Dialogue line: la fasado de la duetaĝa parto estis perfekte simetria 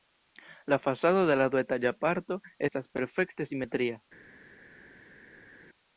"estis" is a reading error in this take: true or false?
true